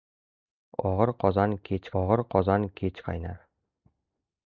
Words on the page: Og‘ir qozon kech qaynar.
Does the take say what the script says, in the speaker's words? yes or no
no